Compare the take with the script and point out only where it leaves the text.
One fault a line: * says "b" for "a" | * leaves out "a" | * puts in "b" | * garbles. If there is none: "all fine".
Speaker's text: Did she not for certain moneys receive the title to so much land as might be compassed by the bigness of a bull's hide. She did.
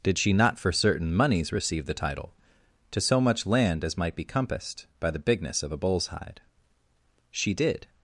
all fine